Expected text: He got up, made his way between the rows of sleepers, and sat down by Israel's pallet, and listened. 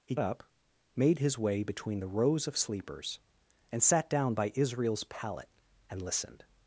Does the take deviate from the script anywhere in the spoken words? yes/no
yes